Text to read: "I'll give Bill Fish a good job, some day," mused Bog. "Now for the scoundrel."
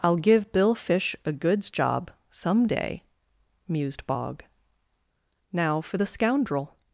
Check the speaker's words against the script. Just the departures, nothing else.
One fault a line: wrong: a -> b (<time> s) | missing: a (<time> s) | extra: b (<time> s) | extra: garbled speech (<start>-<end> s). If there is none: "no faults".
wrong: good -> goods (1.3 s)